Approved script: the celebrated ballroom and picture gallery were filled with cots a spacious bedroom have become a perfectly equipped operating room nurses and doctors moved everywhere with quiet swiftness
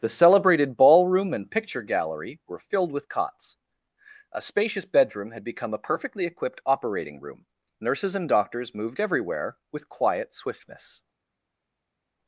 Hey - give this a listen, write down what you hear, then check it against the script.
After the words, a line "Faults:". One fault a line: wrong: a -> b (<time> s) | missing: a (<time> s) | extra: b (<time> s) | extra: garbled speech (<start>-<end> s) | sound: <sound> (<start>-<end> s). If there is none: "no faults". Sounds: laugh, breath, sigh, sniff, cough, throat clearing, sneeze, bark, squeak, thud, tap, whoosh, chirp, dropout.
the celebrated ballroom and picture gallery were filled with cots a spacious bedroom had become a perfectly equipped operating room nurses and doctors moved everywhere with quiet swiftness
Faults:
wrong: have -> had (5.3 s)